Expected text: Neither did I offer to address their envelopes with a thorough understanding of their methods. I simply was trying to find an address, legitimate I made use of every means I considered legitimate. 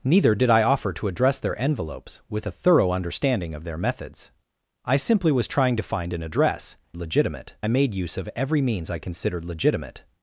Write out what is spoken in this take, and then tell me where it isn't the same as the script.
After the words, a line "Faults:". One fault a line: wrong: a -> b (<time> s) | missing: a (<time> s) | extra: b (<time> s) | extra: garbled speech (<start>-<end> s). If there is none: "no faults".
Neither did I offer to address their envelopes with a thorough understanding of their methods. I simply was trying to find an address, legitimate I made use of every means I considered legitimate.
Faults:
no faults